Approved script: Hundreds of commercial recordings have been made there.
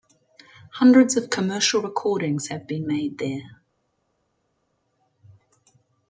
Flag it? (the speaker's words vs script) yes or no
no